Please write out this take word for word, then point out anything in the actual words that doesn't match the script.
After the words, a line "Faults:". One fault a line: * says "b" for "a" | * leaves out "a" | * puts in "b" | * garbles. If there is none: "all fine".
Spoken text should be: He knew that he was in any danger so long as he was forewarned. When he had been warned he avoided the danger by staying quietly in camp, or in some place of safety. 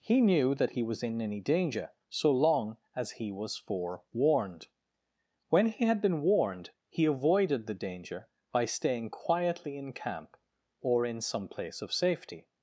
He knew that he was in any danger so long as he was forewarned. When he had been warned he avoided the danger by staying quietly in camp, or in some place of safety.
Faults:
all fine